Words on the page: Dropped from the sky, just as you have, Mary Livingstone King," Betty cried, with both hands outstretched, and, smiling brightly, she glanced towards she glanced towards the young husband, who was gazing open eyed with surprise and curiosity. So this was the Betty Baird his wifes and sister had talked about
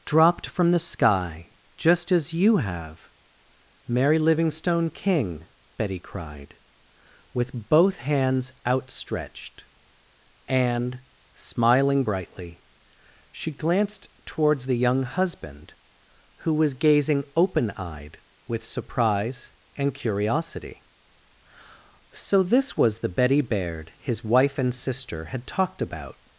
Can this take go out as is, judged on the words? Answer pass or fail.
fail